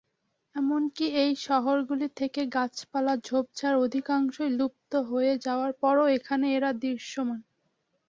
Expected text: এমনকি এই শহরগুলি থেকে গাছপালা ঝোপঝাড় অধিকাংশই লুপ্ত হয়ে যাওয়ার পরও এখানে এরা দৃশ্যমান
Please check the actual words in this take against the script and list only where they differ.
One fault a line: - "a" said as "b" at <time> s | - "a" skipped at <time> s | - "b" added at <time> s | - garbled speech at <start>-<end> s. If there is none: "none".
none